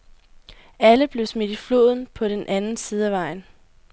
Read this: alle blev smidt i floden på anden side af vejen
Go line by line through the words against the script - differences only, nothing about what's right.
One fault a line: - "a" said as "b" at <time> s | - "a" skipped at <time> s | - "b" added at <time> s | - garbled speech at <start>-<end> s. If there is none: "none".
- "den" added at 2.3 s